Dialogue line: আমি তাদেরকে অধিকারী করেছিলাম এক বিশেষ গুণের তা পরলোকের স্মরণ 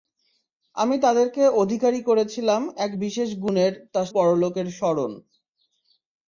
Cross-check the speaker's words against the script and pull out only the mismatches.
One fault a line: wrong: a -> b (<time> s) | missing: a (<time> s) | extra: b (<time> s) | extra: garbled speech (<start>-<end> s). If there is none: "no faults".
no faults